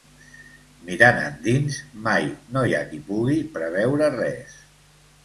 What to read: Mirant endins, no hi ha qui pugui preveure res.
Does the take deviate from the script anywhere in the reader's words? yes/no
yes